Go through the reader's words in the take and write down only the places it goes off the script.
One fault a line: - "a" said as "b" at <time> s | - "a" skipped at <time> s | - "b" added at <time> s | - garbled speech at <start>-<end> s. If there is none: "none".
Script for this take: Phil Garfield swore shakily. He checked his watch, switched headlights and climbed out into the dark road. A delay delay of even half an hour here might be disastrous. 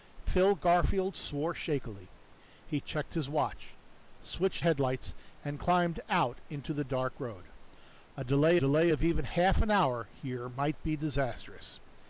none